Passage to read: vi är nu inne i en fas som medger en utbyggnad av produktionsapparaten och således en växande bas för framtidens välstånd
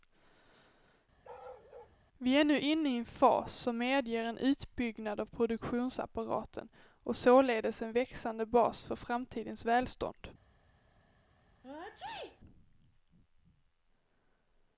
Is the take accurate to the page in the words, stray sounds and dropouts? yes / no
no